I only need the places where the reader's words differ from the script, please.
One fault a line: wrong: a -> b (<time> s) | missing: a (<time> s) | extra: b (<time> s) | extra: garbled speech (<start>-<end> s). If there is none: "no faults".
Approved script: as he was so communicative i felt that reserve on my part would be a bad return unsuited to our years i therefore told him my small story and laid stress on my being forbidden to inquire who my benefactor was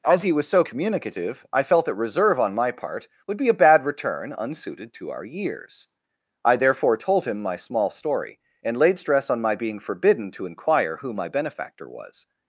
no faults